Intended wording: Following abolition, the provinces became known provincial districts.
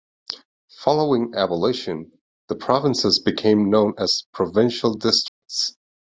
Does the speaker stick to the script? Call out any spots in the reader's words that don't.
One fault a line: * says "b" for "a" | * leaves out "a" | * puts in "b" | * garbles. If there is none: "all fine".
* puts in "as"